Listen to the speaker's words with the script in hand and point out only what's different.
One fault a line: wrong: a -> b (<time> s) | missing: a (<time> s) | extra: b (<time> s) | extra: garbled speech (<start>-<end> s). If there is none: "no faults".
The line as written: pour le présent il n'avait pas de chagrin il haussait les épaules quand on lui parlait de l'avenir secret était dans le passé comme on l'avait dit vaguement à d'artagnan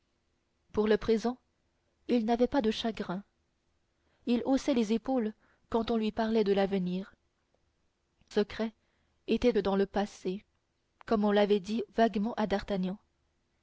no faults